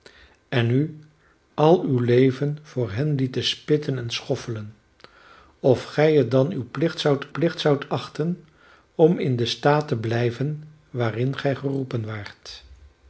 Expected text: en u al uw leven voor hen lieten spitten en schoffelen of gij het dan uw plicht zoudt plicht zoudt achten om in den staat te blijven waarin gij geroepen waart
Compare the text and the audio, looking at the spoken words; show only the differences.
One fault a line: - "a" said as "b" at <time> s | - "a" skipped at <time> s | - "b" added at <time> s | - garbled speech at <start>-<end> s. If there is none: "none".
none